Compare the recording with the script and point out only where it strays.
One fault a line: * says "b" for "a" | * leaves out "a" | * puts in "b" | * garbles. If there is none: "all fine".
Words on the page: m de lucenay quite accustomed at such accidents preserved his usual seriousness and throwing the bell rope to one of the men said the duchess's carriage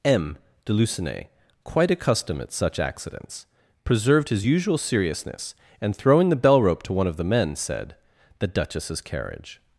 all fine